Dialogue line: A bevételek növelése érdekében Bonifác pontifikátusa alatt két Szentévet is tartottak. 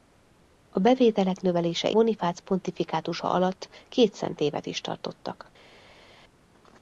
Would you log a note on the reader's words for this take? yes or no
yes